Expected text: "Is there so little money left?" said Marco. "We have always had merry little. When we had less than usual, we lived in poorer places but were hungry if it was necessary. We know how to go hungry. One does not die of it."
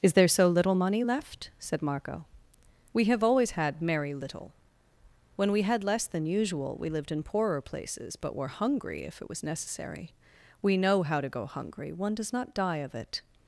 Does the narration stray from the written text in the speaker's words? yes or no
no